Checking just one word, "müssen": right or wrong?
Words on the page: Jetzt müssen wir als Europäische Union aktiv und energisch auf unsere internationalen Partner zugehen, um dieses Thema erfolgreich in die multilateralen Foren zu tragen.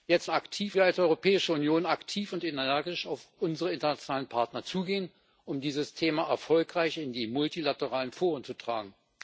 wrong